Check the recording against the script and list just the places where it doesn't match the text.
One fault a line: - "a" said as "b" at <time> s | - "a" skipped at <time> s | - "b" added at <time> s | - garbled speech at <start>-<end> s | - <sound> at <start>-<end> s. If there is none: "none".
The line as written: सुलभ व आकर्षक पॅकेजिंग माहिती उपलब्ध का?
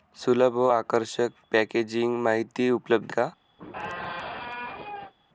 - squeak at 3.6-5.1 s